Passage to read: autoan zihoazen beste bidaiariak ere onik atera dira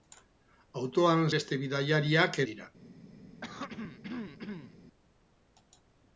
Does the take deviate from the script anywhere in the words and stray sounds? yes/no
yes